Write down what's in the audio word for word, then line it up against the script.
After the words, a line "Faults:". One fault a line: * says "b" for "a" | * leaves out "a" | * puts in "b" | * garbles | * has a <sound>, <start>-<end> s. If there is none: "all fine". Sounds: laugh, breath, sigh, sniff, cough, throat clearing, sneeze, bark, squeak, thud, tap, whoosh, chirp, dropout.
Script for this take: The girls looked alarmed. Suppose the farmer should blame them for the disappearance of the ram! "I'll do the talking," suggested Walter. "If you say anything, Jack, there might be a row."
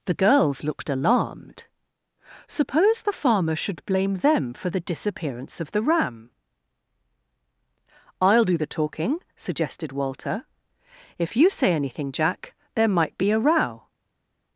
The girls looked alarmed. Suppose the farmer should blame them for the disappearance of the ram! "I'll do the talking," suggested Walter. "If you say anything, Jack, there might be a row."
Faults:
all fine